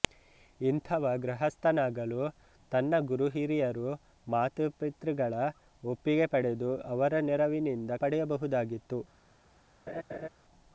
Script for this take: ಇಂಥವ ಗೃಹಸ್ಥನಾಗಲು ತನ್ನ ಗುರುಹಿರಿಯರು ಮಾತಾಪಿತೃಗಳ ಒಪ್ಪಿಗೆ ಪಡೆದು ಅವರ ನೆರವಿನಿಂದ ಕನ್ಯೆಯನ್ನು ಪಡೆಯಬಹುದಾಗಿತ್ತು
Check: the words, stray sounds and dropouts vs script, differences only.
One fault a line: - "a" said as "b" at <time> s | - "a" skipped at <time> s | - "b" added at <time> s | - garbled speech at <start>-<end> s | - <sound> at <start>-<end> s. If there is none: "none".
- "ಕನ್ಯೆಯನ್ನು" skipped at 8.0 s
- laugh at 9.9-10.3 s